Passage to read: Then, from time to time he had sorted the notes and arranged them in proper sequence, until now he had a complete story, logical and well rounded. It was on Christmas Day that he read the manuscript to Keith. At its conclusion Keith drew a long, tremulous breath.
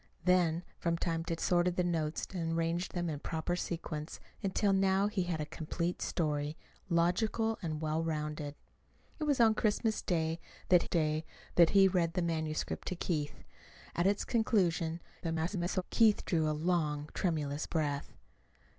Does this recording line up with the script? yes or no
no